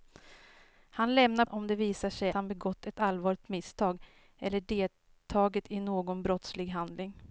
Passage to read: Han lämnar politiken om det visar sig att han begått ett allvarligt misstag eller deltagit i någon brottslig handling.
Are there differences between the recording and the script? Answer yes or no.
yes